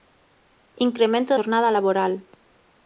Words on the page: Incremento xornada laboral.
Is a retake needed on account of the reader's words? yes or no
no